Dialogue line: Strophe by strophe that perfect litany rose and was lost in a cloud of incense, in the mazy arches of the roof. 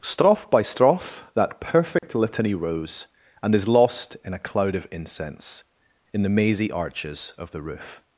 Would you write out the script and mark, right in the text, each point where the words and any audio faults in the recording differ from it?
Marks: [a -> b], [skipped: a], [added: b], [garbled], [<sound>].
Strophe by strophe that perfect [dropout] litany rose and [was -> is] lost in a cloud of incense, in the mazy arches of the roof.